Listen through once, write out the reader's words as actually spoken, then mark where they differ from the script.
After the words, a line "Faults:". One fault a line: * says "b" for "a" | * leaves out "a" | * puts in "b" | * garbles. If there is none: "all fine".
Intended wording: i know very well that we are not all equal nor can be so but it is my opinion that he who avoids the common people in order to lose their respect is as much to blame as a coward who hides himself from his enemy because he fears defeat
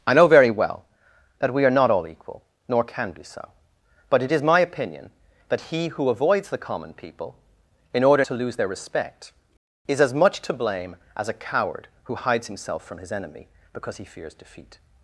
i know very well that we are not all equal nor can be so but it is my opinion that he who avoids the common people in order to lose their respect is as much to blame as a coward who hides himself from his enemy because he fears defeat
Faults:
all fine